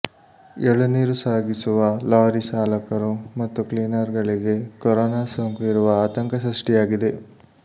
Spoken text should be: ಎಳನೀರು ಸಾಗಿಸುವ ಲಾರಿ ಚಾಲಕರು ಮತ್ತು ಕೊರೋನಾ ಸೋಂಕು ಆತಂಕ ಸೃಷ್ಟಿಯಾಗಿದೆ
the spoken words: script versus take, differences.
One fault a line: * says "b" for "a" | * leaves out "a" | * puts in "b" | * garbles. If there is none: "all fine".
* puts in "ಕ್ಲೀನರ್ ಗಳಿಗೆ"
* puts in "ಇರುವ"